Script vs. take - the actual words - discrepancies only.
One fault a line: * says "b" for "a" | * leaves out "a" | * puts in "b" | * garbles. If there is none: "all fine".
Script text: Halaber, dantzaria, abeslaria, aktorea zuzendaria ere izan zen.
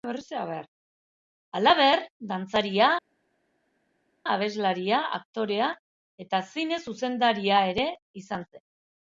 * puts in "eta zine"